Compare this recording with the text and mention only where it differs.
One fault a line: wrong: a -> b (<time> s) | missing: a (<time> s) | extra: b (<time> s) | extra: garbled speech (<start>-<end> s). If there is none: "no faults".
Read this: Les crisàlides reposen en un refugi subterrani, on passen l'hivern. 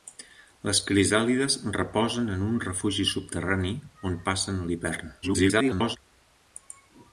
extra: garbled speech (5.2-6.0 s)